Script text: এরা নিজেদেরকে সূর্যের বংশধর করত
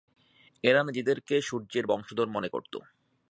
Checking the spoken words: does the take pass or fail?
fail